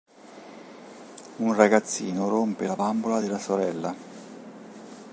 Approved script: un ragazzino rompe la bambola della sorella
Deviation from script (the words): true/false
false